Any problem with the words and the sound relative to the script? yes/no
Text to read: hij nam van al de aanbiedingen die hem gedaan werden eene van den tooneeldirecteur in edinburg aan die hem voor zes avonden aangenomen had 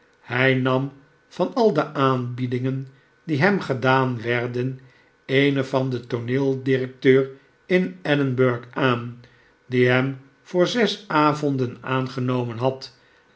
no